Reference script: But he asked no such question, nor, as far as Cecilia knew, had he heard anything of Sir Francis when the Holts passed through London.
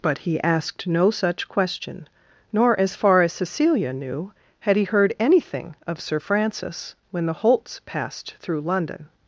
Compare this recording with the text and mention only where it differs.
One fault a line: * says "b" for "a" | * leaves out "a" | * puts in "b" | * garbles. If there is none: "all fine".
all fine